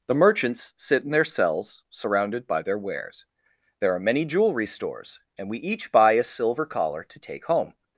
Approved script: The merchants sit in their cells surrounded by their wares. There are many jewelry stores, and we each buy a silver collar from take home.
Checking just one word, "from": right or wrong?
wrong